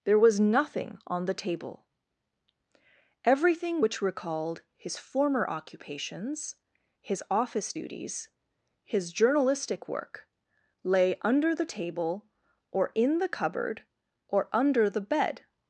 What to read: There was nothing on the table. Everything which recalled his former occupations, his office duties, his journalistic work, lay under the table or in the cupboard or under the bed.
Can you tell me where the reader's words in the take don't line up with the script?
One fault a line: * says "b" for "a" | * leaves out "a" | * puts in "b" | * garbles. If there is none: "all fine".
all fine